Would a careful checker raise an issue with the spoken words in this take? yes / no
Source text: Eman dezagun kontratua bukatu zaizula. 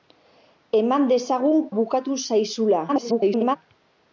yes